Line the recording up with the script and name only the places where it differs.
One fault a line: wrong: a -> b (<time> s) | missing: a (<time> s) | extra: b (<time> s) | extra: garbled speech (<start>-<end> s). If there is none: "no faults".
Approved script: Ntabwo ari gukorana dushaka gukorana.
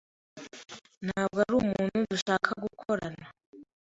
wrong: gukorana -> umuntu (1.6 s)